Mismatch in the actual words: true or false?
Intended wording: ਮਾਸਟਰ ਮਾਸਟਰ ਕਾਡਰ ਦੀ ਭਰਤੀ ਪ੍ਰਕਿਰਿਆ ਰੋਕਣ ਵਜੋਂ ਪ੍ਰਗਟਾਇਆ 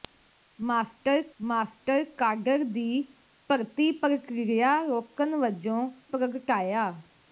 false